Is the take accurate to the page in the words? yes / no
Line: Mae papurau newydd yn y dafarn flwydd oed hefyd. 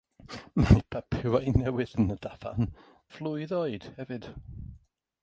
yes